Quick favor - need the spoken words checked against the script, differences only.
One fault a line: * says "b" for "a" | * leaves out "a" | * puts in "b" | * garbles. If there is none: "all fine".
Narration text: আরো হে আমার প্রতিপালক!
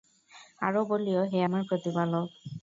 * puts in "বলিও"